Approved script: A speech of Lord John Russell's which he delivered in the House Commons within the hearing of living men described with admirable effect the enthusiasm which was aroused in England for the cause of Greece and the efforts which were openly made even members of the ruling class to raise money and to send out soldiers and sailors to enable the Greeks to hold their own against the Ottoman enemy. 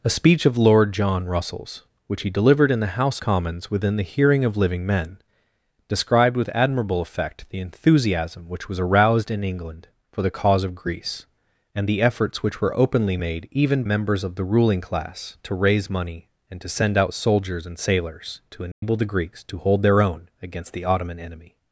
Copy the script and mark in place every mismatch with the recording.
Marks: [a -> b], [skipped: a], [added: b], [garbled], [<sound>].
A speech of Lord John Russell's which he delivered in the House Commons within the hearing of living men described with admirable effect the enthusiasm which was aroused in England for the cause of Greece and the efforts which were openly made even members of the ruling class to raise money and to send out soldiers and sailors to enable [dropout] the Greeks to hold their own against the Ottoman enemy.